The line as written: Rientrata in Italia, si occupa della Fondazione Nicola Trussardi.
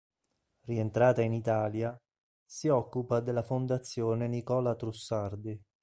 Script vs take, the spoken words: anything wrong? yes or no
no